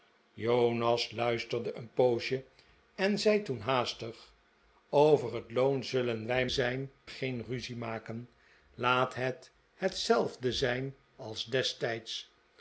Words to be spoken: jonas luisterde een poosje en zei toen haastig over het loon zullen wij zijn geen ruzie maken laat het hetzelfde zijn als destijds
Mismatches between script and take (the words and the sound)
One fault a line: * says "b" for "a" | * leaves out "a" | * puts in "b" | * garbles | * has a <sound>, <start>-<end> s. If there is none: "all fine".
all fine